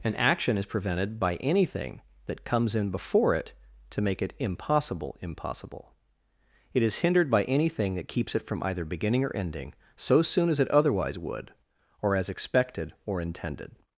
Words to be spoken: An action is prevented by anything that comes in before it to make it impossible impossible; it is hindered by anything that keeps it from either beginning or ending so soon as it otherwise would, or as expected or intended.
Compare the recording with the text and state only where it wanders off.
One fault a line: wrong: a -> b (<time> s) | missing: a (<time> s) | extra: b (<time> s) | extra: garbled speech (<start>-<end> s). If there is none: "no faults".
no faults